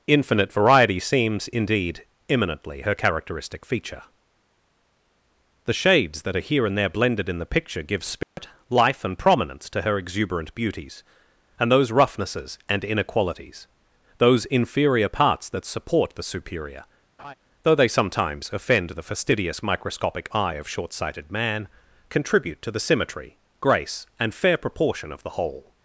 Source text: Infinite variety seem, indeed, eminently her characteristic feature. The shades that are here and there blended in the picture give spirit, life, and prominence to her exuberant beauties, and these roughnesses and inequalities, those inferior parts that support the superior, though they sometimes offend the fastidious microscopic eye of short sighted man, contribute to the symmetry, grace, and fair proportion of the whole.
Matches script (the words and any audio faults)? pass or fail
fail